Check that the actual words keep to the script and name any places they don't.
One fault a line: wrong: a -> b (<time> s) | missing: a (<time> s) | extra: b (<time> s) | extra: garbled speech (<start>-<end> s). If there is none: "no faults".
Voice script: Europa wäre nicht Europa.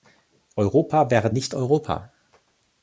no faults